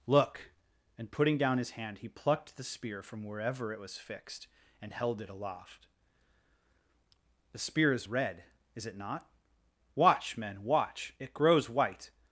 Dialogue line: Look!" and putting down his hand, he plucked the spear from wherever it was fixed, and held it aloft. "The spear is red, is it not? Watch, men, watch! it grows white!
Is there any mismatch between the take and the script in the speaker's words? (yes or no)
no